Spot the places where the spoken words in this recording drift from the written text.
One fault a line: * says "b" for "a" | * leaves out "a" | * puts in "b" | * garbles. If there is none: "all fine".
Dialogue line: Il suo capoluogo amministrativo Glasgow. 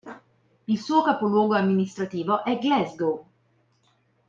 * puts in "è"